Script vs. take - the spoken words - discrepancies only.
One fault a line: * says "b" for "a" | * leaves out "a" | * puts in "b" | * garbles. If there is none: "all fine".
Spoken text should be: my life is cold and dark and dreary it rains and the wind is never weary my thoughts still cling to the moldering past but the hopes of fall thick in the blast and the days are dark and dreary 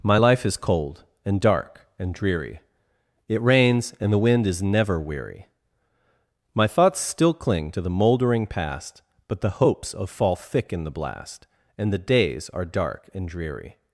all fine